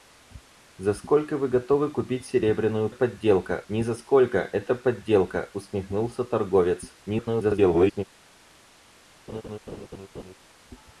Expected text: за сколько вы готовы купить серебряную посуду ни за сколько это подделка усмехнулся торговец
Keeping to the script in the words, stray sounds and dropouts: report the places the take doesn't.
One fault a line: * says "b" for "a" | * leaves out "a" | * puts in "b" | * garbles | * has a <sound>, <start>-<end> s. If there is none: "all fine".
* says "подделка" for "посуду"
* garbles
* has a laugh, 9.3-10.3 s